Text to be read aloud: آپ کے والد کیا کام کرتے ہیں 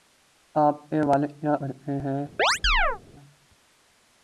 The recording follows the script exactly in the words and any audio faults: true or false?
false